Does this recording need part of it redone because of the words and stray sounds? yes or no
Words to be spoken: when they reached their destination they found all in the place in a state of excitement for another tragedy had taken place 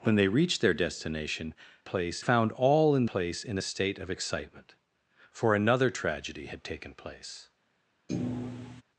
yes